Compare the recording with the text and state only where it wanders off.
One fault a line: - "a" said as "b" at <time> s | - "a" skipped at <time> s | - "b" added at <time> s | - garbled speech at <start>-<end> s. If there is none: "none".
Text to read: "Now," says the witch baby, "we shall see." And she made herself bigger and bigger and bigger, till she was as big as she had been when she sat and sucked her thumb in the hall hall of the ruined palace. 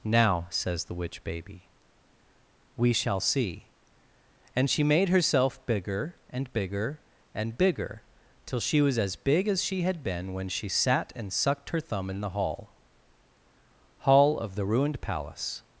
none